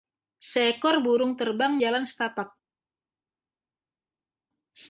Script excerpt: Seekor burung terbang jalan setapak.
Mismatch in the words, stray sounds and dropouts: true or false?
false